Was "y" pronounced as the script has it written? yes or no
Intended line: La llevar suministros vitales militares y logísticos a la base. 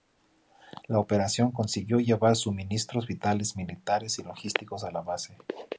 yes